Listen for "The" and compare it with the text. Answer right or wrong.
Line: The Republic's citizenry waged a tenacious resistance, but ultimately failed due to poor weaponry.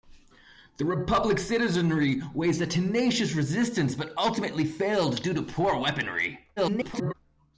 right